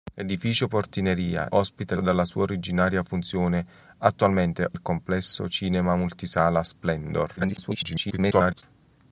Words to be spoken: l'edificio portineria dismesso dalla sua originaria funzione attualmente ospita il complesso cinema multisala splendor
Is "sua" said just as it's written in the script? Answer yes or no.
yes